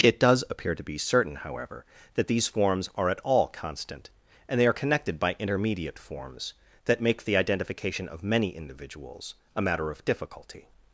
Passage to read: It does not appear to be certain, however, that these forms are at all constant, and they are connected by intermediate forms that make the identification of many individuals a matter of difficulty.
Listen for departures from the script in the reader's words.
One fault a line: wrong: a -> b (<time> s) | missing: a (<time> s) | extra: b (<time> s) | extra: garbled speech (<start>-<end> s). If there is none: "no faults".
missing: not (0.4 s)